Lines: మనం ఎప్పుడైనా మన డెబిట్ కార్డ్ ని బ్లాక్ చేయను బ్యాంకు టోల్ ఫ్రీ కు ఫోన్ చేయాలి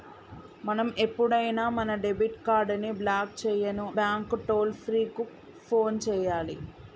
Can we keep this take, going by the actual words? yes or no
yes